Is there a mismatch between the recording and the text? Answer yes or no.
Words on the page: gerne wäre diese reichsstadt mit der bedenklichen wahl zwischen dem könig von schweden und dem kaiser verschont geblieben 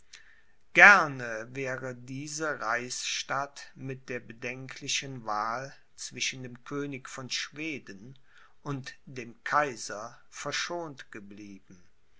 no